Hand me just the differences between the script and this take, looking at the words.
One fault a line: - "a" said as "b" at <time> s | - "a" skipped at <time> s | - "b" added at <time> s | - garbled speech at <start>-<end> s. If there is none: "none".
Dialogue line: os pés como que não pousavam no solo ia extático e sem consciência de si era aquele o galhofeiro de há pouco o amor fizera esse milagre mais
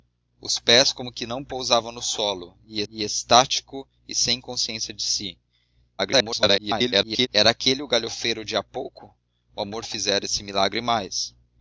- "ia" added at 2.9 s
- garbled speech at 6.0-7.3 s